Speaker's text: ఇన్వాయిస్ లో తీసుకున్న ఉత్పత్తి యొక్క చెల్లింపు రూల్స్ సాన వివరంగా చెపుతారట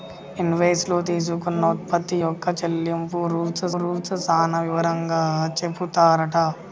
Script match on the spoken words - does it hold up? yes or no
no